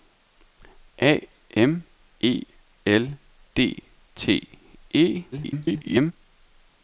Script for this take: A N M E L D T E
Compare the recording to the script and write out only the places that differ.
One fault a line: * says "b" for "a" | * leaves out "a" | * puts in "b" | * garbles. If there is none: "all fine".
* leaves out "N"
* garbles